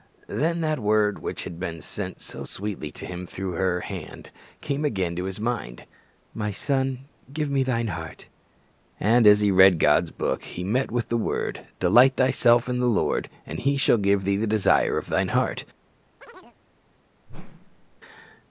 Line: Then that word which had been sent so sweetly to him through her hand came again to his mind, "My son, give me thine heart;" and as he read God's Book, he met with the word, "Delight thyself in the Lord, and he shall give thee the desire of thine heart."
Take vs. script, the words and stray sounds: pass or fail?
fail